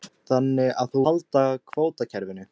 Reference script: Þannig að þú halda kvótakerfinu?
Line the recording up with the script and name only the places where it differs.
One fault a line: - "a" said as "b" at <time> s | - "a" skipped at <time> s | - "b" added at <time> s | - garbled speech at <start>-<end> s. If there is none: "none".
none